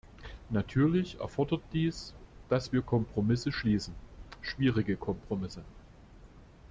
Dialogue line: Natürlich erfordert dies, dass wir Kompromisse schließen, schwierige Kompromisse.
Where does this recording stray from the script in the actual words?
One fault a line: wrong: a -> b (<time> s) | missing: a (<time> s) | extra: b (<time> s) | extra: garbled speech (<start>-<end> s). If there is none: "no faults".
no faults